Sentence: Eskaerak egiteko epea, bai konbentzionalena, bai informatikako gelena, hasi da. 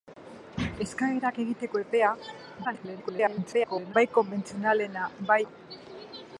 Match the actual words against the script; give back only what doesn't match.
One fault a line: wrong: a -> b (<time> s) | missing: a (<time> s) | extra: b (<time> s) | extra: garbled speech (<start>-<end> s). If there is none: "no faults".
extra: garbled speech (2.6-3.9 s)
missing: informatikako gelena hasi (5.4 s)